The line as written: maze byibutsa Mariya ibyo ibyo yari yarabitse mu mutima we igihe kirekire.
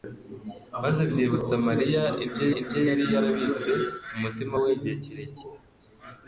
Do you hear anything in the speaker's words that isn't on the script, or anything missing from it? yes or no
no